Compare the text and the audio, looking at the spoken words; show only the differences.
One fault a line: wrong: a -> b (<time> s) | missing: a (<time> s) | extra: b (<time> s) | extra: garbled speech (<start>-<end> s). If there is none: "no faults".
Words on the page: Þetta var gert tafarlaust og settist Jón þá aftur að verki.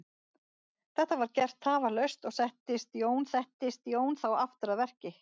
extra: settist Jón (3.3 s)